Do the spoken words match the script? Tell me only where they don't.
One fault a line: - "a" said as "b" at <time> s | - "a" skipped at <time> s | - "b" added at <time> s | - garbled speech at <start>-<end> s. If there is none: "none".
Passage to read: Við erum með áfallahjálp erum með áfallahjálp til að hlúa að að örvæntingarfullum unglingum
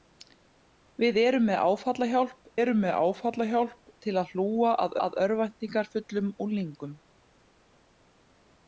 none